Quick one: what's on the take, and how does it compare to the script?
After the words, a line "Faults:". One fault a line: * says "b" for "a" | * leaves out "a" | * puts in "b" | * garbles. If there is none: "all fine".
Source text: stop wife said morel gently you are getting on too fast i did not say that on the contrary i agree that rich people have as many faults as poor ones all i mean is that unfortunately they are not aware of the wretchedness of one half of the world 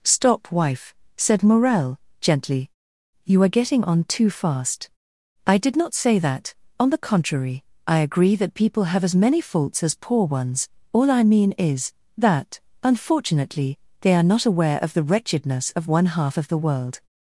stop wife said morel gently you are getting on too fast i did not say that on the contrary i agree that people have as many faults as poor ones all i mean is that unfortunately they are not aware of the wretchedness of one half of the world
Faults:
* leaves out "rich"